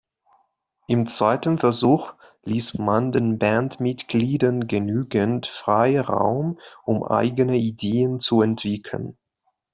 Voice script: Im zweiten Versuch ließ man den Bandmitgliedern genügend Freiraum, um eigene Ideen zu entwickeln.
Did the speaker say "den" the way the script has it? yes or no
yes